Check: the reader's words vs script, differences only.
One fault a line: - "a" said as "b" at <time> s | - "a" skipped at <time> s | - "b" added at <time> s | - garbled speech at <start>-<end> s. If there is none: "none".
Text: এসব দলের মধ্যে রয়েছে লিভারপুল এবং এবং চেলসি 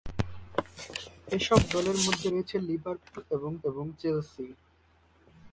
none